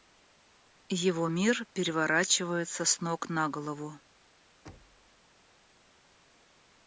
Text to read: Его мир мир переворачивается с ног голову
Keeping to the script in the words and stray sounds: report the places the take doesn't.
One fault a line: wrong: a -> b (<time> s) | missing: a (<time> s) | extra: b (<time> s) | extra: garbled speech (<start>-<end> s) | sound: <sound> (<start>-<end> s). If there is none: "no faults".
missing: мир (1.7 s)
extra: на (3.3 s)
sound: thud (4.7-5.2 s)